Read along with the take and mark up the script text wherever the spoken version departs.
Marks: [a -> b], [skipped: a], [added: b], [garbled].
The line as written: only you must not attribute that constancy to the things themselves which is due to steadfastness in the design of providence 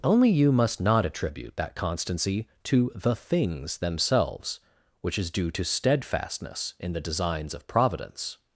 only you must not attribute that constancy to the things themselves which is due to steadfastness in the [design -> designs] of providence